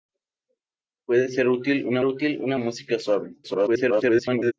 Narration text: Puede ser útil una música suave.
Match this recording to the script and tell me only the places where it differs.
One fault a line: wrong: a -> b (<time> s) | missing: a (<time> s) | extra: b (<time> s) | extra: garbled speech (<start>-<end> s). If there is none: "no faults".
extra: útil una (2.0 s)
extra: garbled speech (3.4-4.5 s)